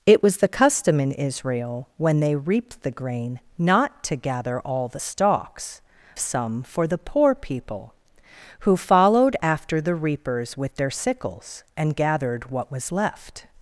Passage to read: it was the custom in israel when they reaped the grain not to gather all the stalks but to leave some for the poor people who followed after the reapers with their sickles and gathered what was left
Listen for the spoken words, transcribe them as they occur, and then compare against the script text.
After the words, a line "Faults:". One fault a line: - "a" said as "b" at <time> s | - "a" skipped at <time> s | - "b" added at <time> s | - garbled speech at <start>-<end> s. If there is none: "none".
it was the custom in israel when they reaped the grain not to gather all the stalks some for the poor people who followed after the reapers with their sickles and gathered what was left
Faults:
- "but to leave" skipped at 5.8 s